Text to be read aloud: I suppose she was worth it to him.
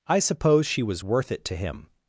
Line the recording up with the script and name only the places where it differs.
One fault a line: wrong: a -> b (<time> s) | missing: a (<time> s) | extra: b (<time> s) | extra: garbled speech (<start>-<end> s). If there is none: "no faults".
no faults